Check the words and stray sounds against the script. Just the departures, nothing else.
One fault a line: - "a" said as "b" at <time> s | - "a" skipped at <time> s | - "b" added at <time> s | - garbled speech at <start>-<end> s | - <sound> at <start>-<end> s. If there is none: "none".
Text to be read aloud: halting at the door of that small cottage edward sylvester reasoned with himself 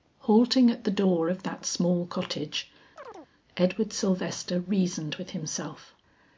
- chirp at 3.0-3.3 s